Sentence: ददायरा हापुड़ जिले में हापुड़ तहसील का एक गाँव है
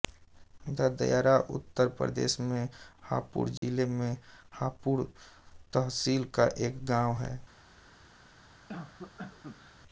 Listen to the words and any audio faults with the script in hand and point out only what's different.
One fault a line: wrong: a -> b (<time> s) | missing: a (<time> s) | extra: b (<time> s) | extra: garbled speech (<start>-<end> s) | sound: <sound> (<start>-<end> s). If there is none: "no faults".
extra: उत्तर प्रदेश में (1.5 s)
sound: dropout (3.6-3.6 s)
sound: cough (8.7-9.8 s)